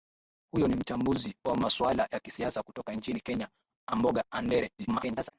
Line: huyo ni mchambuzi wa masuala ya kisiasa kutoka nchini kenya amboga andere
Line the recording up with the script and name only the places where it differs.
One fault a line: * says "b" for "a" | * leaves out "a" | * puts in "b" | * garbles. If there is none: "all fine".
* garbles